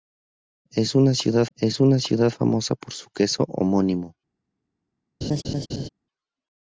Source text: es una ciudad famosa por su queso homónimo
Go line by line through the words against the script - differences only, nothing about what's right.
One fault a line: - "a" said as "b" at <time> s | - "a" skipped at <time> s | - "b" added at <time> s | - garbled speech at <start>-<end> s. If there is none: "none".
- "es una ciudad" added at 1.6 s